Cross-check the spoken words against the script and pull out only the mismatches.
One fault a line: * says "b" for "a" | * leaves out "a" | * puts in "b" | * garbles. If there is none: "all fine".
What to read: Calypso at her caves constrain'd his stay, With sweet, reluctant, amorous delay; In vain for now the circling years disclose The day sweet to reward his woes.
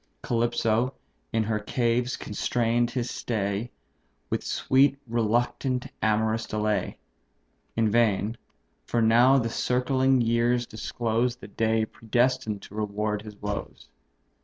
* says "in" for "at"
* says "predestined" for "sweet"